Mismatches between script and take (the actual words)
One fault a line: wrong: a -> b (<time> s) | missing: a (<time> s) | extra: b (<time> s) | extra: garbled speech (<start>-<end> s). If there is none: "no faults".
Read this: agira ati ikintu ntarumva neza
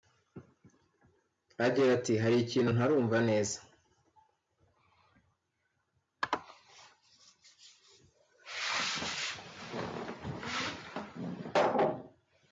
extra: hari (2.2 s)